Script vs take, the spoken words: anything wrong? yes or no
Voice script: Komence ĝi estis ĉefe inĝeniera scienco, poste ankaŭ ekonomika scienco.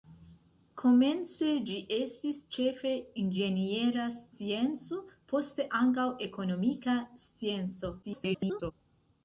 yes